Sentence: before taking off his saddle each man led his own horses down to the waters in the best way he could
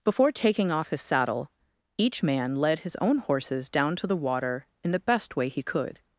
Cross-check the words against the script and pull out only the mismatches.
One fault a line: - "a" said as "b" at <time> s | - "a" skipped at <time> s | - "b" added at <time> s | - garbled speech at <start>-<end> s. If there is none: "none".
- "waters" said as "water" at 4.2 s